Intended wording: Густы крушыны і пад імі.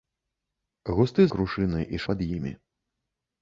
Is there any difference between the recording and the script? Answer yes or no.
no